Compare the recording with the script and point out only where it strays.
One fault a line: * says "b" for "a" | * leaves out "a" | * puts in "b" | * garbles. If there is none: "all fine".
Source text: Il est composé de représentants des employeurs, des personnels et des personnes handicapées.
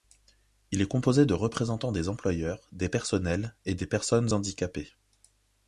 all fine